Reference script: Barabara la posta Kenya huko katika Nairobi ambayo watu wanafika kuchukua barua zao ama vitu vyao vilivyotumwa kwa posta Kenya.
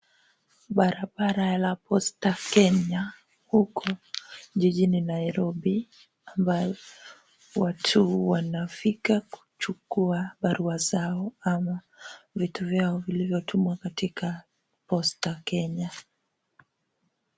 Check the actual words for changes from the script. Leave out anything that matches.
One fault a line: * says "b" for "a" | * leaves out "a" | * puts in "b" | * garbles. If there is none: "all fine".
* says "jijini" for "katika"
* says "katika" for "kwa"